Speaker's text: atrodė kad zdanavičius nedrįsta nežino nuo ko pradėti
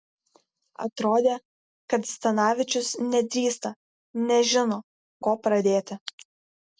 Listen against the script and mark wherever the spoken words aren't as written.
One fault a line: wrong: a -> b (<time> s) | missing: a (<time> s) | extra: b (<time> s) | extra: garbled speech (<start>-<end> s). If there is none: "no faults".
missing: nuo (4.8 s)